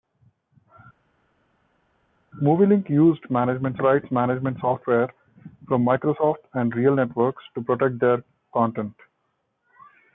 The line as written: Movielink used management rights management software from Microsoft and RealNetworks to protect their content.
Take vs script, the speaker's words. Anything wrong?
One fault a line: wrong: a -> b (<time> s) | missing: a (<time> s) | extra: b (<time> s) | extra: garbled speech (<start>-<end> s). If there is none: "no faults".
no faults